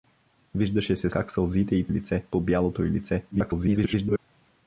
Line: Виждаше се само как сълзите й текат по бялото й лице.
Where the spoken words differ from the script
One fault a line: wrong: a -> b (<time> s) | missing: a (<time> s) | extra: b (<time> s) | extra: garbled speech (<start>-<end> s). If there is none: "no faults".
missing: само (1.1 s)
wrong: текат -> лице (1.9 s)
extra: garbled speech (3.3-4.2 s)